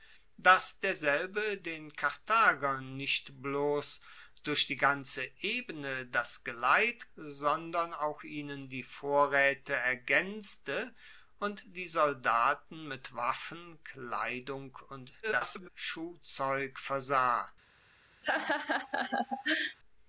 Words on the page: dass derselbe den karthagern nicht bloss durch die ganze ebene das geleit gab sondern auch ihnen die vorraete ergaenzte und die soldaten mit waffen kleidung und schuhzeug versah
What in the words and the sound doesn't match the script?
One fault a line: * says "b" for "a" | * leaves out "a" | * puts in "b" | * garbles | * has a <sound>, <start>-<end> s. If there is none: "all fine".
* leaves out "gab"
* garbles
* has a laugh, 18.2-19.8 s